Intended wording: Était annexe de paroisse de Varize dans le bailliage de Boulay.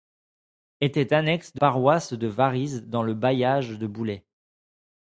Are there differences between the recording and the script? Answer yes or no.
no